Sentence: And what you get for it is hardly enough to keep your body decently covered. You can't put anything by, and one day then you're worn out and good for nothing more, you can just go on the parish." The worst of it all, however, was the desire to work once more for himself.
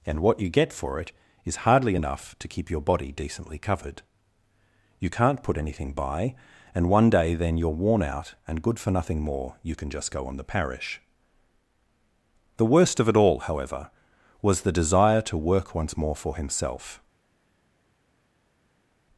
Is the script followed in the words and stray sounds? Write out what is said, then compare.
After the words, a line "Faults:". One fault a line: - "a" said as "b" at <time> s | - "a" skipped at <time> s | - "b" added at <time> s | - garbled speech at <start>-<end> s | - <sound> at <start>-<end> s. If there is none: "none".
And what you get for it is hardly enough to keep your body decently covered. You can't put anything by, and one day then you're worn out and good for nothing more, you can just go on the parish." The worst of it all, however, was the desire to work once more for himself.
Faults:
none